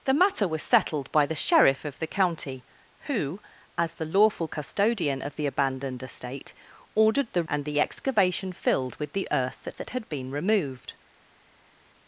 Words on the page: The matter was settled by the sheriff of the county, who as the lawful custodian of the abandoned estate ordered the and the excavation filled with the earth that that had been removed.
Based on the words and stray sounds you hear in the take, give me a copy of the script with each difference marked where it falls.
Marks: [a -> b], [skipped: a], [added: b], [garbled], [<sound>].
The matter was settled by the sheriff of the county, who as the lawful custodian of the abandoned estate ordered the and the excavation filled with the earth that that had been removed.